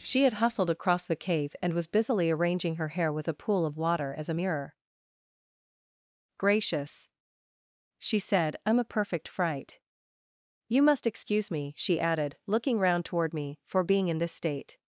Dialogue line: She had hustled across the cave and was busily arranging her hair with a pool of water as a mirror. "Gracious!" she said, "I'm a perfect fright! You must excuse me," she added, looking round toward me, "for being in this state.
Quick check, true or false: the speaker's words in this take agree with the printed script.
true